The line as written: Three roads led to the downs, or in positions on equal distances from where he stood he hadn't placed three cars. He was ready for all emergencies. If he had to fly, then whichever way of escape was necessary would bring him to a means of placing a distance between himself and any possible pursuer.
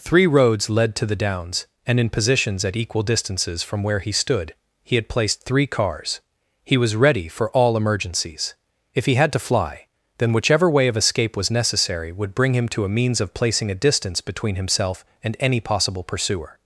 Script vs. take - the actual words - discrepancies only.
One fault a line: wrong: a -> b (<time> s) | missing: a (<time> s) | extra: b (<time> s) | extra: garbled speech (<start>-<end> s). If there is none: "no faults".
wrong: or -> and (1.9 s)
wrong: on -> at (2.6 s)
wrong: hadn't -> had (5.0 s)